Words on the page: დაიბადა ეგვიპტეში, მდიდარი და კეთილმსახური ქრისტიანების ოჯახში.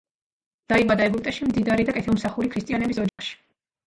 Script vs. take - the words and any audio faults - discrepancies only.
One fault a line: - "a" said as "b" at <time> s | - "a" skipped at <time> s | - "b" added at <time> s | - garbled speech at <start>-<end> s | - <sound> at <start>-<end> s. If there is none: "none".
- dropout at 3.1-3.2 s